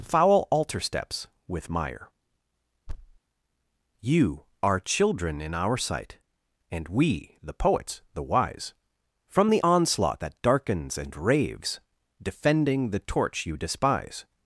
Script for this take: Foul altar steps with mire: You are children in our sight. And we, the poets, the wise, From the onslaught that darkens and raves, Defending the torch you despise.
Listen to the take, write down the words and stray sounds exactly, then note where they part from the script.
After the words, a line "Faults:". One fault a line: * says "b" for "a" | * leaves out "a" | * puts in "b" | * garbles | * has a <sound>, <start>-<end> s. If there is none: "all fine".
Foul altar steps with mire: You are children in our sight. And we, the poets, the wise, From the onslaught that darkens and raves, Defending the torch you despise.
Faults:
* has a thud, 2.9-3.2 s